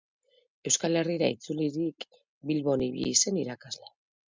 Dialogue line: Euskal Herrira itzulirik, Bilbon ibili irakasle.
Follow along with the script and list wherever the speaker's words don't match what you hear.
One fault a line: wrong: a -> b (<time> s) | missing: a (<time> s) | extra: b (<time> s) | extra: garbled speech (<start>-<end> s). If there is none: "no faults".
extra: zen (3.2 s)